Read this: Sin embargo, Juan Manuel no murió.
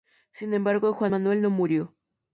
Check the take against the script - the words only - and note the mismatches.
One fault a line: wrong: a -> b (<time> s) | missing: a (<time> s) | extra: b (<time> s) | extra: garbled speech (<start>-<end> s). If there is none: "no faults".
no faults